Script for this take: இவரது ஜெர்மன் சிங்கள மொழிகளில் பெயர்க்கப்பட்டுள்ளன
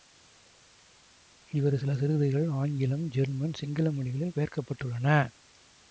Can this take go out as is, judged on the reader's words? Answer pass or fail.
fail